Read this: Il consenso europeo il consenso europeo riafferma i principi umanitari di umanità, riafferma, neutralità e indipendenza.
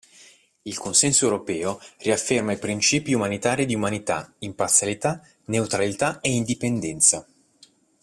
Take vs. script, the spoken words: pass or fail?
fail